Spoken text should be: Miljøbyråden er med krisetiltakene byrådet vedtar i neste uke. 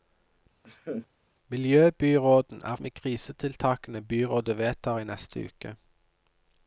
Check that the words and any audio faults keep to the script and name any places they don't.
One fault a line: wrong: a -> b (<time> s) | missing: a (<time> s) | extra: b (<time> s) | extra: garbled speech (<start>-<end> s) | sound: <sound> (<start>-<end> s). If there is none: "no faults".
sound: laugh (0.6-1.1 s)